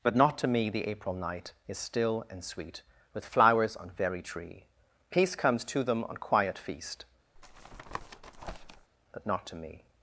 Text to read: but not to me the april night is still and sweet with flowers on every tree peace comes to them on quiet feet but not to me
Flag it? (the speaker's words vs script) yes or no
yes